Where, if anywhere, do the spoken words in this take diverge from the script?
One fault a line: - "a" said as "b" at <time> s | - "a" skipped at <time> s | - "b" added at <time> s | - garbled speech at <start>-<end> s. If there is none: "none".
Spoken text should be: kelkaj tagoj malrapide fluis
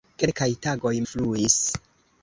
- "malrapide" skipped at 0.9 s